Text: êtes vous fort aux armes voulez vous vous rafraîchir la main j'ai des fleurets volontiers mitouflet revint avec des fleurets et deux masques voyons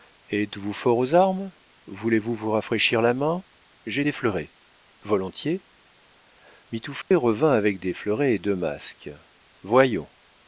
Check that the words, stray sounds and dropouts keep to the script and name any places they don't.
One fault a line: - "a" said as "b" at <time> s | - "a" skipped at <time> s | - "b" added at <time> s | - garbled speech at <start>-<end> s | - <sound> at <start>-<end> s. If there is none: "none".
- dropout at 7.0-7.1 s